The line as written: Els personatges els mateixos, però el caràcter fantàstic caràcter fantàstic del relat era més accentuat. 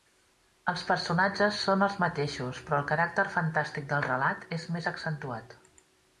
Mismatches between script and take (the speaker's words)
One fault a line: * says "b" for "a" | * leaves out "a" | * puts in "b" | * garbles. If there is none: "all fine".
* puts in "són"
* leaves out "caràcter fantàstic"
* says "és" for "era"